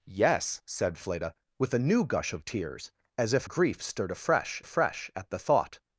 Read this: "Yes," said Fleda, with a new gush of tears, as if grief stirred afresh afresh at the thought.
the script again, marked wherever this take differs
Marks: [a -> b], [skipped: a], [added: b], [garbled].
"Yes," said Fleda, with a new gush of tears, as if grief stirred afresh afresh at the thought.